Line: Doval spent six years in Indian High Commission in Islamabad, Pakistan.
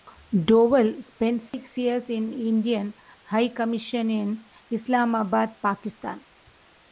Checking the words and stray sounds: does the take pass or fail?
fail